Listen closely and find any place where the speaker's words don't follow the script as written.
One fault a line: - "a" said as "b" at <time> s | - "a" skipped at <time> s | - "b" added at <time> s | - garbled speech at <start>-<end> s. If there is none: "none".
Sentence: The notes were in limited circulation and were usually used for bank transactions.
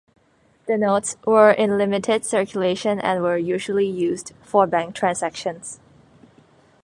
none